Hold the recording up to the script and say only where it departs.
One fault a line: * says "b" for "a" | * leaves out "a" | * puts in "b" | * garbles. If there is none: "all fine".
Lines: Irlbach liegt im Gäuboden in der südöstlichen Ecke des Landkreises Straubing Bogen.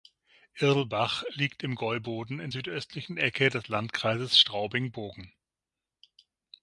* leaves out "der"